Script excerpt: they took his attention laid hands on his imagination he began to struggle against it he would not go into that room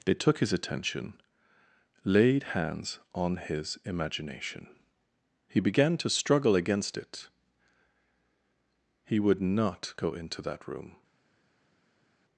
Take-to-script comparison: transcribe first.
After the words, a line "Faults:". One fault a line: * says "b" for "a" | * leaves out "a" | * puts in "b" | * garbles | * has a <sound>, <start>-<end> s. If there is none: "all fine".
they took his attention laid hands on his imagination he began to struggle against it he would not go into that room
Faults:
all fine